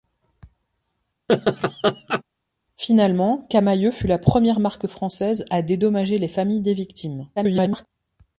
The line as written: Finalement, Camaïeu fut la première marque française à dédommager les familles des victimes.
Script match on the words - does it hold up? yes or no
no